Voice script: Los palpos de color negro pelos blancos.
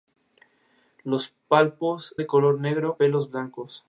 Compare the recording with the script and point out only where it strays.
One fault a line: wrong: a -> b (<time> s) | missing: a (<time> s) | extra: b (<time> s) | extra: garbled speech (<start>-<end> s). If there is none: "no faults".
no faults